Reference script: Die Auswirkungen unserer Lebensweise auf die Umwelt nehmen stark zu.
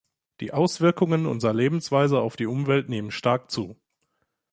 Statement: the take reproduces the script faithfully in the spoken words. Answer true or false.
true